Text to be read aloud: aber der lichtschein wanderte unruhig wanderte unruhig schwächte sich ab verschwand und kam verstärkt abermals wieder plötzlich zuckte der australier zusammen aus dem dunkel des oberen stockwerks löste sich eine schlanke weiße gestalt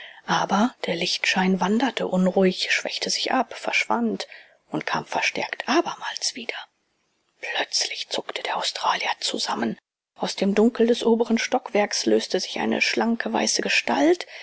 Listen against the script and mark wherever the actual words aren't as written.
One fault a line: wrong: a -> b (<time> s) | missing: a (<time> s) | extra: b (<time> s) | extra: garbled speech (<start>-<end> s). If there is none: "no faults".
missing: wanderte unruhig (2.7 s)